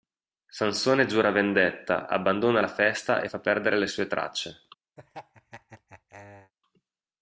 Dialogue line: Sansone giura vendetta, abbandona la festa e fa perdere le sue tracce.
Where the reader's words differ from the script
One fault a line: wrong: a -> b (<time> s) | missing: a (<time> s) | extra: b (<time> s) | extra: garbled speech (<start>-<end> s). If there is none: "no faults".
no faults